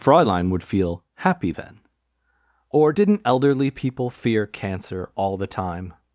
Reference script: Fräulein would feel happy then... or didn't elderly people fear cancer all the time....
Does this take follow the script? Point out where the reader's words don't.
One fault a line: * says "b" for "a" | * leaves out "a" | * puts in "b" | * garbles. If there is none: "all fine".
all fine